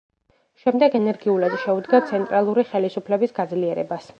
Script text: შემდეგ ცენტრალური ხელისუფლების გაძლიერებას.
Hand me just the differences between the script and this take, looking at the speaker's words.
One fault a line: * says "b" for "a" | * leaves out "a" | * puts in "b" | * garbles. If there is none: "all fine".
* puts in "ენერგიულად შეუდგა"